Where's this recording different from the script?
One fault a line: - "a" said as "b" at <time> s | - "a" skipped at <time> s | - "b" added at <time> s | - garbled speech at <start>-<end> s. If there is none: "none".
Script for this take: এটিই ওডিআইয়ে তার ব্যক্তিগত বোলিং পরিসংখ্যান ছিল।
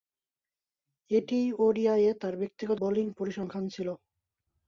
none